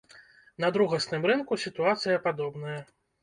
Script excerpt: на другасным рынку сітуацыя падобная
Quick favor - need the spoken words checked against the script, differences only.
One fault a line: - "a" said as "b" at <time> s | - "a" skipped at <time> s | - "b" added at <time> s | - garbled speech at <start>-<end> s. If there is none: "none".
none